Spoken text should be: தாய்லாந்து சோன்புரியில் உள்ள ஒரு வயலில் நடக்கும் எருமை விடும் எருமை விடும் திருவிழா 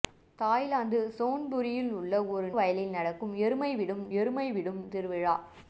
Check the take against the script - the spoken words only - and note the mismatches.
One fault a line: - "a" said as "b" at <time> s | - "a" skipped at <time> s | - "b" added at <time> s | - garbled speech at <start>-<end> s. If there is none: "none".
none